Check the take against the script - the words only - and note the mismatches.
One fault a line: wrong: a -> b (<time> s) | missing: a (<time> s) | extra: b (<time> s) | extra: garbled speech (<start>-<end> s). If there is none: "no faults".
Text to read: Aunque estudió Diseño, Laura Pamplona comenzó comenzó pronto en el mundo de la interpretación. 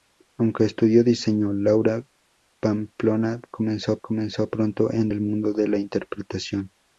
no faults